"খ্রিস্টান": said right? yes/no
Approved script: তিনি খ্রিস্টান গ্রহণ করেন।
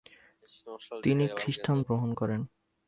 yes